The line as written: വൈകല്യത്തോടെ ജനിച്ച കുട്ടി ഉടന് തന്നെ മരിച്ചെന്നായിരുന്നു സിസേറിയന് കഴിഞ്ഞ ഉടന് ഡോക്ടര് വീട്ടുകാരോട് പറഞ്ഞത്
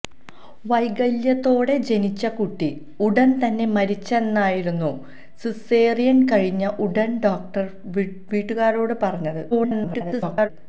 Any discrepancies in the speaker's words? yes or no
yes